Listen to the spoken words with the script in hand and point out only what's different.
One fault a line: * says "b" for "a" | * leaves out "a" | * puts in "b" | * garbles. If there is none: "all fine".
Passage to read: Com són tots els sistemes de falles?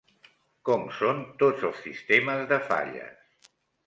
all fine